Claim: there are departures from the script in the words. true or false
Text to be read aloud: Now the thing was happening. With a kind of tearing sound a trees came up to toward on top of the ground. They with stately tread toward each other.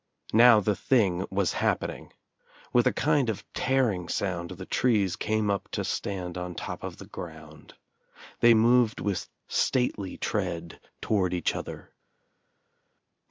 true